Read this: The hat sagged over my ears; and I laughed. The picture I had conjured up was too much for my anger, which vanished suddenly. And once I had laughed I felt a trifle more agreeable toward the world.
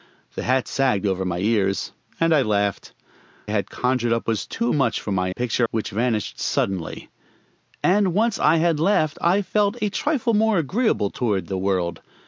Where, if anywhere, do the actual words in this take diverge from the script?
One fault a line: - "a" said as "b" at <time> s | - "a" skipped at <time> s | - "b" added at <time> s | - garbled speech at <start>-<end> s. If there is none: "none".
- "The picture I" skipped at 2.9 s
- "anger" said as "picture" at 5.3 s